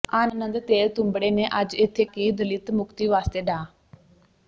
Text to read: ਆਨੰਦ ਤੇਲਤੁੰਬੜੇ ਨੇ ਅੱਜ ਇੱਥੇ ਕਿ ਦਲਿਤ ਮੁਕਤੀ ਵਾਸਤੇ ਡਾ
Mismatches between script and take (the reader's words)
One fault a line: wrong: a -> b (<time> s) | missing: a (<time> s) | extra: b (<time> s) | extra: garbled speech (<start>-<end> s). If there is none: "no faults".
no faults